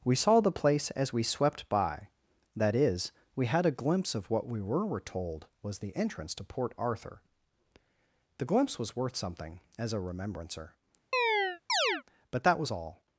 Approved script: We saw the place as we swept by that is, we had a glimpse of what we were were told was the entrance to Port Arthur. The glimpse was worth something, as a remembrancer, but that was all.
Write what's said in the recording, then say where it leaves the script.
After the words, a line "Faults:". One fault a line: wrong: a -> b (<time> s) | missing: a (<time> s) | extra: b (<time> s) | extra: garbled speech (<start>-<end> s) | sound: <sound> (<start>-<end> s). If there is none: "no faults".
We saw the place as we swept by that is, we had a glimpse of what we were were told was the entrance to Port Arthur. The glimpse was worth something, as a remembrancer, but that was all.
Faults:
sound: chirp (11.1-12.0 s)